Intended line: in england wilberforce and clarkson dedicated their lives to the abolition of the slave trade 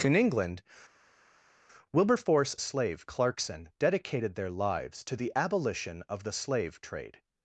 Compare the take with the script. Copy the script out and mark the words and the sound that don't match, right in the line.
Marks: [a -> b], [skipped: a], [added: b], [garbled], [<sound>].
in england wilberforce [and -> slave] clarkson dedicated their lives to the abolition of the slave trade